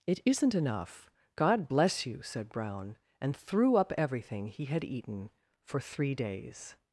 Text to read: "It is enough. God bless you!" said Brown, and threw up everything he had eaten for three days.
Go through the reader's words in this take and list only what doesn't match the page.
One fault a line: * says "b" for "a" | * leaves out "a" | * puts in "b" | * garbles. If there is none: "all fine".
* says "isn't" for "is"